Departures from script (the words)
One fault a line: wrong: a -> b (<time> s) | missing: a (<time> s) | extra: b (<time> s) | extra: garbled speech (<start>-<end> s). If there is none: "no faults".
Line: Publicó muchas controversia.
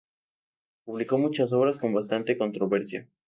extra: obras con bastante (1.5 s)